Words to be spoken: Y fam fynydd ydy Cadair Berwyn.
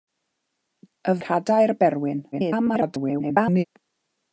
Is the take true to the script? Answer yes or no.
no